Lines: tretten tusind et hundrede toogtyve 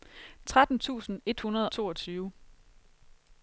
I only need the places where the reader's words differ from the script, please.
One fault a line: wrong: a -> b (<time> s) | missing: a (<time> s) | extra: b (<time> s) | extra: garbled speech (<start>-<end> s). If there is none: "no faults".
no faults